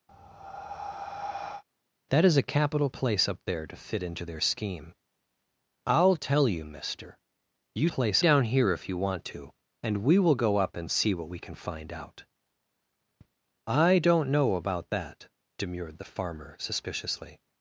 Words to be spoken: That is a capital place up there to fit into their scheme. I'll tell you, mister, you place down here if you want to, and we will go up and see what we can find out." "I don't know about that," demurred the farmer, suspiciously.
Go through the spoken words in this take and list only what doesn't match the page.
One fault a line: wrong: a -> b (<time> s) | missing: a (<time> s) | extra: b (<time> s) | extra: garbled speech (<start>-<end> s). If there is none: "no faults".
no faults